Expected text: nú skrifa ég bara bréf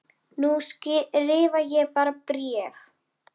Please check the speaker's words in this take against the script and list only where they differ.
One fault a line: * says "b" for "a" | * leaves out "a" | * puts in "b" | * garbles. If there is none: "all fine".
all fine